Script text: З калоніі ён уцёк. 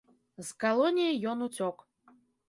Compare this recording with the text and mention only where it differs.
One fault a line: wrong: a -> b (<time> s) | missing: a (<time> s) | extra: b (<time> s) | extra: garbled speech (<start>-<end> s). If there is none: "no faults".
no faults